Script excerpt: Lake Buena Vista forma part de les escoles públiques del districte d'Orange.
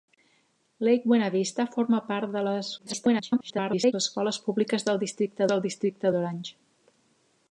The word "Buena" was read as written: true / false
true